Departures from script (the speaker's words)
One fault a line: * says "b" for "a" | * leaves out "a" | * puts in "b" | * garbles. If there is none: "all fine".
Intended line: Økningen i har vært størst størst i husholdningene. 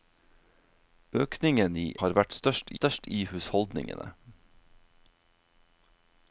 all fine